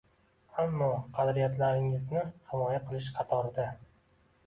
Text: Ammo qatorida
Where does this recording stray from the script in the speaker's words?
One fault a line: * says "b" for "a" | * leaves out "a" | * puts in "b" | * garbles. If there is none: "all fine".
* puts in "qadriyatlaringizni himoya qilish"